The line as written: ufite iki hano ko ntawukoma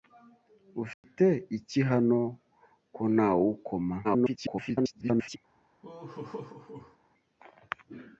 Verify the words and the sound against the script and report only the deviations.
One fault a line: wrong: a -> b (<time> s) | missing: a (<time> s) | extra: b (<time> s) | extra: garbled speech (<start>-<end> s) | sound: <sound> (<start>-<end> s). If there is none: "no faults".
sound: dropout (0.9-1.0 s)
extra: garbled speech (4.0-5.4 s)
sound: laugh (5.8-7.0 s)